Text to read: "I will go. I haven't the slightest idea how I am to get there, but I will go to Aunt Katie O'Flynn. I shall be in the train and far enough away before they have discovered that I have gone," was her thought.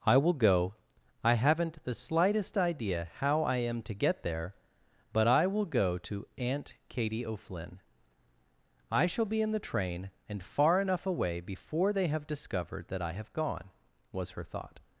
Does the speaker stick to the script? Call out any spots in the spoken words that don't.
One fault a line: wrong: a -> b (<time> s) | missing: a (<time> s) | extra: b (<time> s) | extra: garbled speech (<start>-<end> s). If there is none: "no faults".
no faults